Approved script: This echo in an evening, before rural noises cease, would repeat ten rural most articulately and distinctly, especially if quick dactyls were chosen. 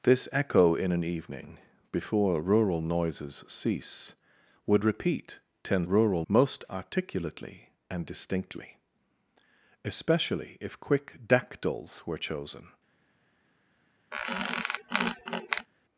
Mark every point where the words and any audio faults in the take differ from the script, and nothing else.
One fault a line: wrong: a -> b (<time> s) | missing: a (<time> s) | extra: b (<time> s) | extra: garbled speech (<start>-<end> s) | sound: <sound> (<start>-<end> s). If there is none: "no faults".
sound: squeak (14.1-15.7 s)